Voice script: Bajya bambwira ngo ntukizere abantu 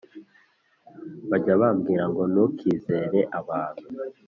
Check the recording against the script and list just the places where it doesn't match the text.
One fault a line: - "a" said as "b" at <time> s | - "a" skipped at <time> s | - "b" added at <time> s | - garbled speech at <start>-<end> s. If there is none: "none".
none